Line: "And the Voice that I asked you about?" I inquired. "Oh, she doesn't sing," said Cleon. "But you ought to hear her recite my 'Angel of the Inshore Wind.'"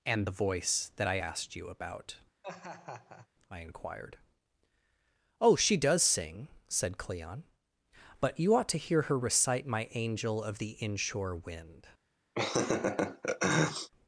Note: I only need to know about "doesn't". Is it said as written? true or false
false